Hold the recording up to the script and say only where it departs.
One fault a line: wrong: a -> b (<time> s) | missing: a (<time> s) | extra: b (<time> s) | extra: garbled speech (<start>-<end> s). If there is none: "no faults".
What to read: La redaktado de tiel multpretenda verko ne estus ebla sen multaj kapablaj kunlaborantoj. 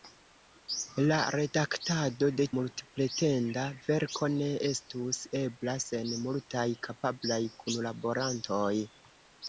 missing: tiel (2.5 s)